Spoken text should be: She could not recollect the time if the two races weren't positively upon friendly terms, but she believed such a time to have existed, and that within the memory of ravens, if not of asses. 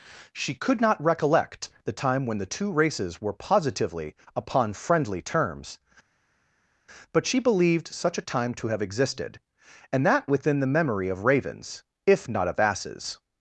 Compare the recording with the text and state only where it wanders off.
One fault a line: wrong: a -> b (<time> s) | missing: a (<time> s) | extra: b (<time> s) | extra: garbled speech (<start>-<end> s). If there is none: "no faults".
wrong: if -> when (2.2 s)
wrong: weren't -> were (3.2 s)